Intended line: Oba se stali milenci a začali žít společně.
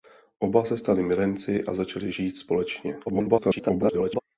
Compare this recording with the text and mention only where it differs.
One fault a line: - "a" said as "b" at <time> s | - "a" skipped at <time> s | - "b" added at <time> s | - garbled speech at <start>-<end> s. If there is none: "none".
- garbled speech at 3.1-4.2 s